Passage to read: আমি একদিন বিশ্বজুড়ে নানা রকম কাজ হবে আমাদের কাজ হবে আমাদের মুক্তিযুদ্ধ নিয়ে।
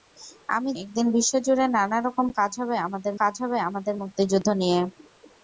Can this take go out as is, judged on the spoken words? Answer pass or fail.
pass